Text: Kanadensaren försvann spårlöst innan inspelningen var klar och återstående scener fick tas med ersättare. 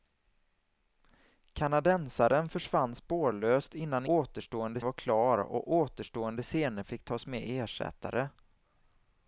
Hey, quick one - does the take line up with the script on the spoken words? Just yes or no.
no